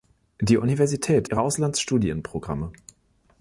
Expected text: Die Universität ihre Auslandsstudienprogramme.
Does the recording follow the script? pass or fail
pass